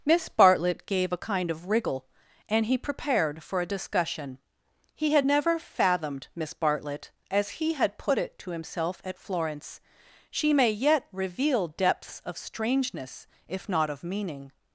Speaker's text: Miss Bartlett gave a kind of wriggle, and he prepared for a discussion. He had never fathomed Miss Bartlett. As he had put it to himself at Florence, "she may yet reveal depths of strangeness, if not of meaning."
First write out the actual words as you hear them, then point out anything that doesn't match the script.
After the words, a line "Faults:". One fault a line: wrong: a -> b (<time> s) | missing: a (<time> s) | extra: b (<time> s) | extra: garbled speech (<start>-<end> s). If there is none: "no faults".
Miss Bartlett gave a kind of wriggle, and he prepared for a discussion. He had never fathomed Miss Bartlett. As he had put it to himself at Florence, "she may yet reveal depths of strangeness, if not of meaning."
Faults:
no faults